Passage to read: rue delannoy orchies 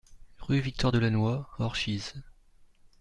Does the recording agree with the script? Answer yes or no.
no